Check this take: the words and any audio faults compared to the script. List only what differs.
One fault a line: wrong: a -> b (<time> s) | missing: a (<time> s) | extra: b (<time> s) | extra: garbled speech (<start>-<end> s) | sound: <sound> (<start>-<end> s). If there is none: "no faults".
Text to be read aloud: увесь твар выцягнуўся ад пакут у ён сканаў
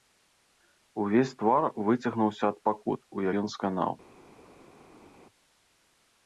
no faults